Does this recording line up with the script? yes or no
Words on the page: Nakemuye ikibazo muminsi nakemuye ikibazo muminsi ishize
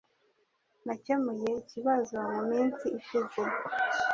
no